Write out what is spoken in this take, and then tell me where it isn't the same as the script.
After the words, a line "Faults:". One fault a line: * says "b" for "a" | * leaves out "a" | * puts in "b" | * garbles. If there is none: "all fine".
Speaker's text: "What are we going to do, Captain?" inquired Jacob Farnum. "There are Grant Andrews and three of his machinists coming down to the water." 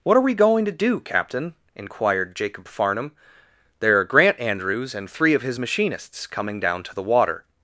"What are we going to do, Captain?" inquired Jacob Farnum. "There are Grant Andrews and three of his machinists coming down to the water."
Faults:
all fine